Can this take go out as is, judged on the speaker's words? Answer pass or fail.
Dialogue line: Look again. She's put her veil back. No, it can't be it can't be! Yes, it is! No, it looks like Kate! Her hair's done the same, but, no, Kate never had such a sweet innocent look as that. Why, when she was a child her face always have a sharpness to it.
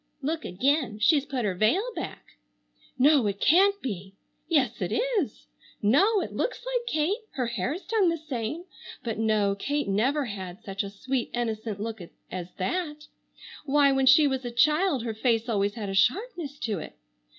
fail